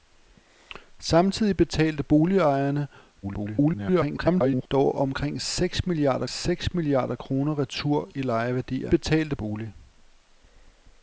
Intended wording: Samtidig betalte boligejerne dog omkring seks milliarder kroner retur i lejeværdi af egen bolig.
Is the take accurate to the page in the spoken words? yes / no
no